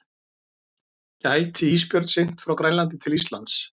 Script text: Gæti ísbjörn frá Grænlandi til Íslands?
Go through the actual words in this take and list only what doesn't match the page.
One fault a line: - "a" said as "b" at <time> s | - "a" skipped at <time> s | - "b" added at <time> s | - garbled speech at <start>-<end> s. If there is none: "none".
- "synt" added at 2.1 s